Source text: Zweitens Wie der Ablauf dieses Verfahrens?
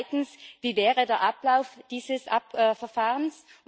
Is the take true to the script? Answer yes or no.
no